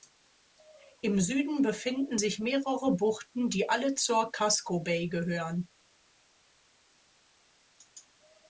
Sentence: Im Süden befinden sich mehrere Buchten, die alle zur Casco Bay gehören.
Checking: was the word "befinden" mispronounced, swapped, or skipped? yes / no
no